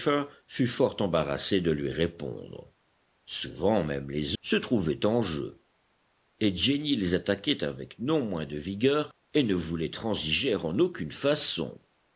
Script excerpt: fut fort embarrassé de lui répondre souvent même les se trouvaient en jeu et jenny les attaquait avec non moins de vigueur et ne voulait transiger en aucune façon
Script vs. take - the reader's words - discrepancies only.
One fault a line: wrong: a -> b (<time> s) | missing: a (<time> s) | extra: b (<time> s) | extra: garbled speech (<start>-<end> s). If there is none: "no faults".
no faults